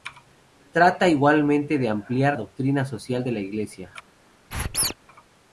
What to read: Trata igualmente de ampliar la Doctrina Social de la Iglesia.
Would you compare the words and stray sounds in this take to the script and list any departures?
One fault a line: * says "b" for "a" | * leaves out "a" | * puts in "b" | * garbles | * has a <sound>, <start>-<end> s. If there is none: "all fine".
* leaves out "la"
* has a squeak, 4.5-4.9 s